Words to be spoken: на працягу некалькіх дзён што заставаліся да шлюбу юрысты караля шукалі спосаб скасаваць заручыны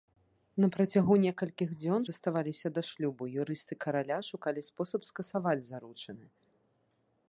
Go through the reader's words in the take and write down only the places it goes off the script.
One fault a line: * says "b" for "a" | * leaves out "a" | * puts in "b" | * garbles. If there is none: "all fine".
* leaves out "што"